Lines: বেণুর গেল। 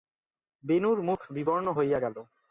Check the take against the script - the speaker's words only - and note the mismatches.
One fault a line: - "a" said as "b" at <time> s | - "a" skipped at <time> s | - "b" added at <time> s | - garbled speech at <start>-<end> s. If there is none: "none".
- "মুখ বিবর্ণ হইয়া" added at 1.0 s